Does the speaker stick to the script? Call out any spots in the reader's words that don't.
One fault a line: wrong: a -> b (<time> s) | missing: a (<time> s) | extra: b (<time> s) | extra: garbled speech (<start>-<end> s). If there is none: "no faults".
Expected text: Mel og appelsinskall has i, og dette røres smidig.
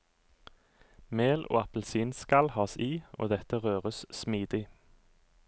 no faults